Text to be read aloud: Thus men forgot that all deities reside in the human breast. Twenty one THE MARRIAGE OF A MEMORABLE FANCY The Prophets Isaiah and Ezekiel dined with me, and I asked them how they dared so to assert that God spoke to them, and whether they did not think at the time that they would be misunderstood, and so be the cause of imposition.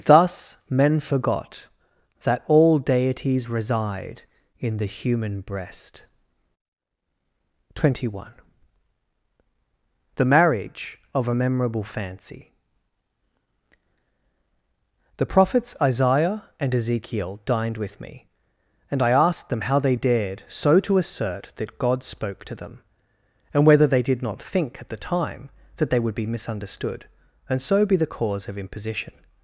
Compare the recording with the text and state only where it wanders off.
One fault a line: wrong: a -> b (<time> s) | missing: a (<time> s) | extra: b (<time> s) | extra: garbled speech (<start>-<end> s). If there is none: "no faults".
no faults